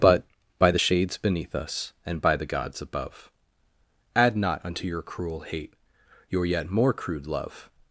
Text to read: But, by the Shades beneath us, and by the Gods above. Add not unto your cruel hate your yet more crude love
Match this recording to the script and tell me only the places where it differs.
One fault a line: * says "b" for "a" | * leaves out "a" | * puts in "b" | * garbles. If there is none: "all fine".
all fine